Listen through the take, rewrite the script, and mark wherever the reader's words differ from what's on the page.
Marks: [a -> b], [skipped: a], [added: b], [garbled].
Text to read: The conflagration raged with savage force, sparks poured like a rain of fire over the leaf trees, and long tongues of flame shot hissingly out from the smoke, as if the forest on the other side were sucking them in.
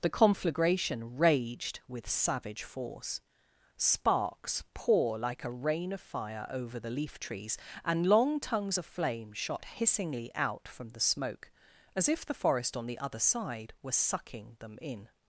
The conflagration raged with savage force, sparks [poured -> pour] like a rain of fire over the leaf trees, and long tongues of flame shot hissingly out from the smoke, as if the forest on the other side were sucking them in.